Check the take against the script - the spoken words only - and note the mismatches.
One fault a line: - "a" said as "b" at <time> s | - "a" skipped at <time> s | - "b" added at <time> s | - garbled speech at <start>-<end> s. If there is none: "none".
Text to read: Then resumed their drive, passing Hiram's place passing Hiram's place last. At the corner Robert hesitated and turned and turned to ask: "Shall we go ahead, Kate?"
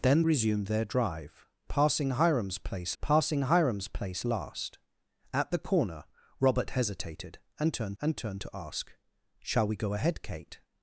none